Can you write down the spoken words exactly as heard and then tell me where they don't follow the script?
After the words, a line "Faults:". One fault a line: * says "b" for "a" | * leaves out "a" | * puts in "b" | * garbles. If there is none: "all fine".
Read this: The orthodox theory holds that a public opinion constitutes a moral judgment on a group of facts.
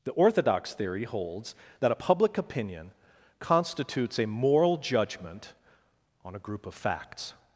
The orthodox theory holds that a public opinion constitutes a moral judgment on a group of facts.
Faults:
all fine